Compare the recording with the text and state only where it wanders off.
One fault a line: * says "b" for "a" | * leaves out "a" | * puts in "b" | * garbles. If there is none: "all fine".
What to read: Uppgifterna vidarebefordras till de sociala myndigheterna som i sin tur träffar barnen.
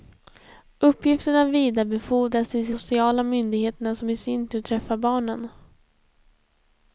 all fine